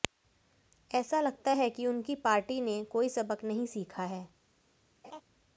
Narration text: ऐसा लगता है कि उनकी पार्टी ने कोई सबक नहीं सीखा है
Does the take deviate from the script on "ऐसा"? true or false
false